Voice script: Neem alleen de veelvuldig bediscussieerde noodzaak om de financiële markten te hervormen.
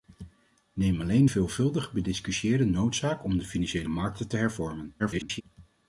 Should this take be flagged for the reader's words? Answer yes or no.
yes